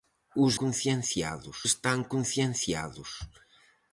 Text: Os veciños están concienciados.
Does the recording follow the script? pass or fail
fail